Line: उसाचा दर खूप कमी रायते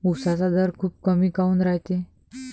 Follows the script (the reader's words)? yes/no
no